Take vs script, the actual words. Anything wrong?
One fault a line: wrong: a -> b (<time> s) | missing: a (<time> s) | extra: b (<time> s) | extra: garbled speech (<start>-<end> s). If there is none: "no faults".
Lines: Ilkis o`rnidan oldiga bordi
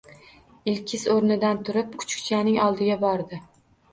extra: turib kuchukchaning (1.7 s)